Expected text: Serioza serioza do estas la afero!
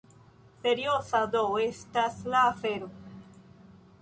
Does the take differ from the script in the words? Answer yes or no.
yes